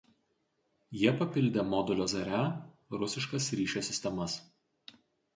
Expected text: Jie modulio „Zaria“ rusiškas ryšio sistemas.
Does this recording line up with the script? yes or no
no